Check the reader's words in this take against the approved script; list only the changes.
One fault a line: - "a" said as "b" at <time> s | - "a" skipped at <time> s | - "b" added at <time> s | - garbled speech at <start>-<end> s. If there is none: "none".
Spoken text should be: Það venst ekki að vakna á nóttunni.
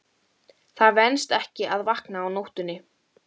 none